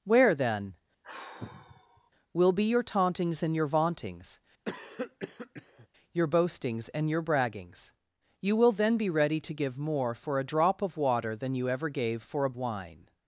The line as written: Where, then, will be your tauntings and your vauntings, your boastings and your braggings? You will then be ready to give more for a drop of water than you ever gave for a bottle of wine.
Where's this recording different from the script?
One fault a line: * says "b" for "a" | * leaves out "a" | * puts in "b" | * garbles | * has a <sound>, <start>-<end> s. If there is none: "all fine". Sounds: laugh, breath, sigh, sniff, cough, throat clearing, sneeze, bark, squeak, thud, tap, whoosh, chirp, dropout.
* has a sigh, 1.0-2.1 s
* has a cough, 4.7-5.9 s
* leaves out "bottle of"